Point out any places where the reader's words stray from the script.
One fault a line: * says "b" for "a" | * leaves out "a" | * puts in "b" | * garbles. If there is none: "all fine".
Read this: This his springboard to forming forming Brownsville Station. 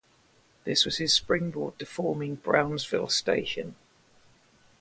* puts in "was"
* leaves out "forming"